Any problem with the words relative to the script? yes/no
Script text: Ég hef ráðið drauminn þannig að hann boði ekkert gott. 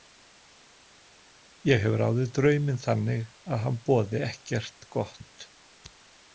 no